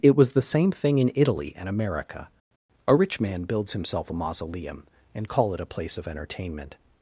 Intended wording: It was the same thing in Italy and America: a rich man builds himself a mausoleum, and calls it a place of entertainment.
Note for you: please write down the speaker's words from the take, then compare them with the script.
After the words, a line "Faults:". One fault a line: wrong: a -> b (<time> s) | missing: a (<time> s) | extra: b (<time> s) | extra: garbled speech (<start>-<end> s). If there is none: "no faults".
It was the same thing in Italy and America: a rich man builds himself a mausoleum, and call it a place of entertainment.
Faults:
wrong: calls -> call (5.3 s)